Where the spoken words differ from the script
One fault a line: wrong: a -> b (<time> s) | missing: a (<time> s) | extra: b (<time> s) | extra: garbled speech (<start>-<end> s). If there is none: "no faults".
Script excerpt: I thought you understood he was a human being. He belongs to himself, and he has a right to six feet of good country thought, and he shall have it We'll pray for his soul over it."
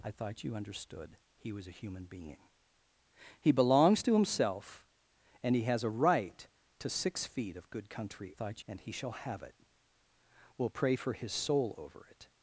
no faults